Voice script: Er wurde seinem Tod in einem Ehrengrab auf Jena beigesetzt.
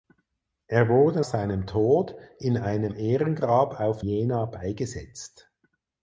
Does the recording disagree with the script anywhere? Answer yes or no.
no